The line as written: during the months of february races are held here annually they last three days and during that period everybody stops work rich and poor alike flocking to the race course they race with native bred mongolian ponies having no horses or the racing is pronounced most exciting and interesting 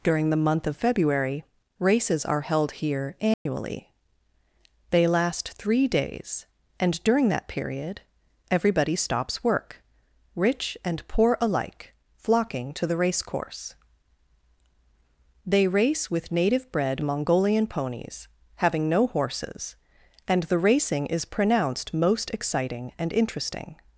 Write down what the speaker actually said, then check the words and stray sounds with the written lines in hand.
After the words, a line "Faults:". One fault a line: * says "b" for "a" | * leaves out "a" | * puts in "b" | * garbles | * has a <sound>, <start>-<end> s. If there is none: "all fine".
during the month of february races are held here annually they last three days and during that period everybody stops work rich and poor alike flocking to the race course they race with native bred mongolian ponies having no horses and the racing is pronounced most exciting and interesting
Faults:
* says "month" for "months"
* has a dropout, 3.3-3.5 s
* says "and" for "or"